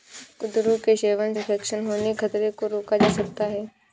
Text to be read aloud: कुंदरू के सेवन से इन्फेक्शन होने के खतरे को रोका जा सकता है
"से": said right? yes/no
no